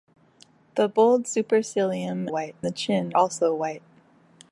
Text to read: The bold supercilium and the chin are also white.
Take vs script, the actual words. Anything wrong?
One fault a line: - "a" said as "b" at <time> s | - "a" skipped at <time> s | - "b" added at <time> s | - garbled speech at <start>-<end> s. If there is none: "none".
- "and" said as "white" at 2.3 s
- "are" skipped at 3.1 s